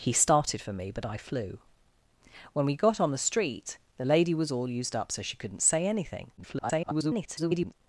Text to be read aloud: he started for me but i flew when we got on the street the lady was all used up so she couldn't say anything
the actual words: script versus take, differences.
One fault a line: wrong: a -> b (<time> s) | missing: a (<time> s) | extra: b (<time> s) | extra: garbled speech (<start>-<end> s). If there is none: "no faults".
extra: garbled speech (6.4-7.7 s)